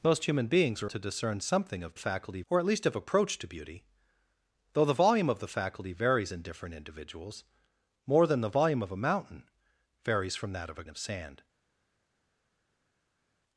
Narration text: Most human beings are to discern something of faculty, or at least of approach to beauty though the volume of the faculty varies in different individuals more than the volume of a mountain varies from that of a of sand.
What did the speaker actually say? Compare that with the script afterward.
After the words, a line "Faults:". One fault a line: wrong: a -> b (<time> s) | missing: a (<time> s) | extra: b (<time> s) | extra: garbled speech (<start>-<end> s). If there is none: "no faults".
Most human beings are to discern something of faculty, or at least of approach to beauty though the volume of the faculty varies in different individuals more than the volume of a mountain varies from that of a of sand.
Faults:
no faults